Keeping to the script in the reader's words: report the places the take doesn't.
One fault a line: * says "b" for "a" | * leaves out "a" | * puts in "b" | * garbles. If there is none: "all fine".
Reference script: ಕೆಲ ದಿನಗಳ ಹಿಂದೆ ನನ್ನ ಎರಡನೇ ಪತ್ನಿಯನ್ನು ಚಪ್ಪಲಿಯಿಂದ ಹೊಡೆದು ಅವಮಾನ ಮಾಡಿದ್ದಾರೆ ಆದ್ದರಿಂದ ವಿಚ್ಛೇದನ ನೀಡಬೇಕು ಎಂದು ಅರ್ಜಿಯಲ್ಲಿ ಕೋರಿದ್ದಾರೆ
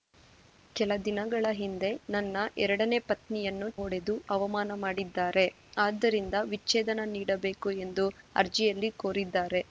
* leaves out "ಚಪ್ಪಲಿಯಿಂದ"